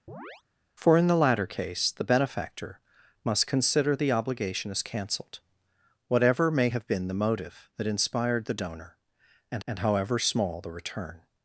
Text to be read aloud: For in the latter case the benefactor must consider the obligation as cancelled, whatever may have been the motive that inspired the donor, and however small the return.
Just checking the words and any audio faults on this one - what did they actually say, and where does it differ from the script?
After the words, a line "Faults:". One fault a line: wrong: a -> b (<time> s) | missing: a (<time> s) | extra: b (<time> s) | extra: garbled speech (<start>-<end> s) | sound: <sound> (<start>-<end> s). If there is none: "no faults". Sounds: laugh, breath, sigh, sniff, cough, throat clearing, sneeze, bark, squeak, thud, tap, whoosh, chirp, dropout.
For in the latter case the benefactor must consider the obligation as cancelled, whatever may have been the motive that inspired the donor, and and however small the return.
Faults:
sound: chirp (0.1-0.4 s)
extra: and (9.6 s)